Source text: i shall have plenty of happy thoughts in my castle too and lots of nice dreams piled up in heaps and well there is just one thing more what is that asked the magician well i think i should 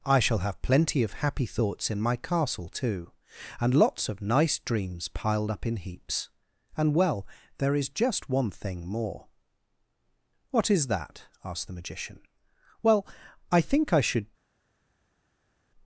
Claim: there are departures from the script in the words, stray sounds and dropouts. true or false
false